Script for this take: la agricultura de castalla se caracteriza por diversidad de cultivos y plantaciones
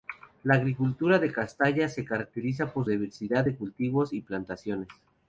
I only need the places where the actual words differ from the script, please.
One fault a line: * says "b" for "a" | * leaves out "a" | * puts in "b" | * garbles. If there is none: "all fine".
all fine